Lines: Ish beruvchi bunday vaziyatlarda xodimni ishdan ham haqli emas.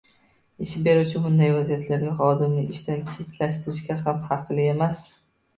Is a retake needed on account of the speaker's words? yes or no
yes